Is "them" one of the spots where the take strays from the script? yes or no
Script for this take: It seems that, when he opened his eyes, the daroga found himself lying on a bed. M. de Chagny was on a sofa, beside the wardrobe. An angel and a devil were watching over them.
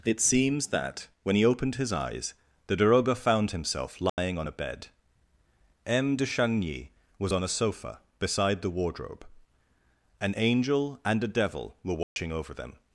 no